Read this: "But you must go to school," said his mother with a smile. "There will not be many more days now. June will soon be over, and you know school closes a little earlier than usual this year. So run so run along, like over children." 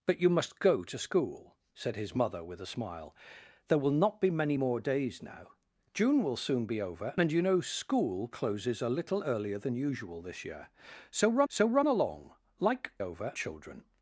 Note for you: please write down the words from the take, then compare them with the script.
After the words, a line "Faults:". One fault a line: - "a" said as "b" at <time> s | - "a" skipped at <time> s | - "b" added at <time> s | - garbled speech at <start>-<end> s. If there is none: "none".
"But you must go to school," said his mother with a smile. "There will not be many more days now. June will soon be over, and you know school closes a little earlier than usual this year. So run so run along, like over children."
Faults:
none